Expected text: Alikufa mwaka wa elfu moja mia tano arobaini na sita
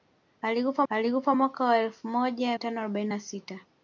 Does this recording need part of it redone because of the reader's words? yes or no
yes